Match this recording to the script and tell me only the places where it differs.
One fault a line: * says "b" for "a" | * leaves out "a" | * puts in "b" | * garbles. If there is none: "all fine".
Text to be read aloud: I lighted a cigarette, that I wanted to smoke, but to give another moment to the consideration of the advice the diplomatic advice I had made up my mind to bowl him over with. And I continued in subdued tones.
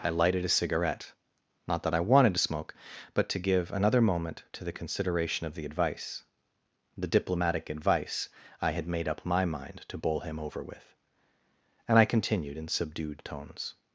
* puts in "not"